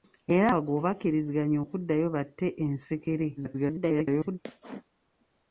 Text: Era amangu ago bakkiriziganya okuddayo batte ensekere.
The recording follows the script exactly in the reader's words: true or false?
false